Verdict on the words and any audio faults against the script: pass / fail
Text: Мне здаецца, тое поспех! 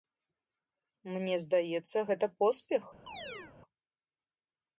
fail